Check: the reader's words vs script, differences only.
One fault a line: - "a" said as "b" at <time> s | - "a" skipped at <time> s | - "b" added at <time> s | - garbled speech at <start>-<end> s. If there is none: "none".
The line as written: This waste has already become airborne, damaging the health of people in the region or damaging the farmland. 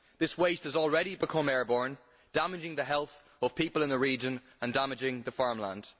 - "or" said as "and" at 4.6 s